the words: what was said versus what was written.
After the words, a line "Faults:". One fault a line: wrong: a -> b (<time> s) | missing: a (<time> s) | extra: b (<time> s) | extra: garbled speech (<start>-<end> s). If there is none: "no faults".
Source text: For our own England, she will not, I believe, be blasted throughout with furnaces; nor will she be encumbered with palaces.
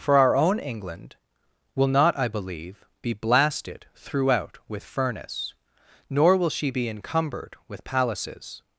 For our own England, will not, I believe, be blasted throughout with furnace; nor will she be encumbered with palaces.
Faults:
missing: she (1.1 s)
wrong: furnaces -> furnace (4.8 s)